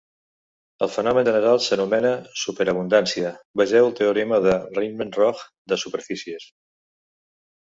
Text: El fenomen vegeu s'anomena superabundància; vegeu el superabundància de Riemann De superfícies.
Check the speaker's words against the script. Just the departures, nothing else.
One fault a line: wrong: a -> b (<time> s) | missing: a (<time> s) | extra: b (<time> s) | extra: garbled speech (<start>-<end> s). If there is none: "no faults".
wrong: vegeu -> general (1.3 s)
wrong: superabundància -> teorema (4.0 s)
extra: Roch (5.2 s)